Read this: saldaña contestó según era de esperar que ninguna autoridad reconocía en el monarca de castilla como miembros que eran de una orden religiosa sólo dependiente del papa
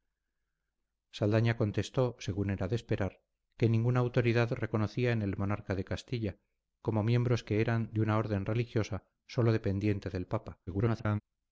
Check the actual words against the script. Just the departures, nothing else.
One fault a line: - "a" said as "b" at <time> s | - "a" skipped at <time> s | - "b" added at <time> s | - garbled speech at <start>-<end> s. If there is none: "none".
- garbled speech at 10.7-11.2 s